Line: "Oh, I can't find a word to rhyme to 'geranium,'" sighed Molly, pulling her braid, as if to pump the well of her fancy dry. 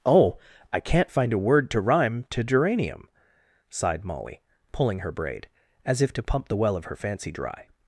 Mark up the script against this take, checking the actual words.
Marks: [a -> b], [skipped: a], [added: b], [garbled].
"Oh, I can't find a word to rhyme to 'geranium,'" sighed Molly, pulling her braid, as if to pump the well of her fancy dry.